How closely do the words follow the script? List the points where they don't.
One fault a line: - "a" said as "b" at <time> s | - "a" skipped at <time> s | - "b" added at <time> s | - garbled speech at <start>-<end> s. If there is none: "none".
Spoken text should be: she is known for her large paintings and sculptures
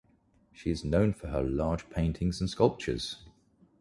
none